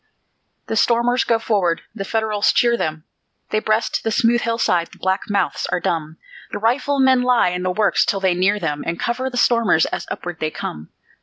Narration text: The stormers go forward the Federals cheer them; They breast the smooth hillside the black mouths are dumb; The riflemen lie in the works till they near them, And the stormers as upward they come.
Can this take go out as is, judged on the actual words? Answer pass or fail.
fail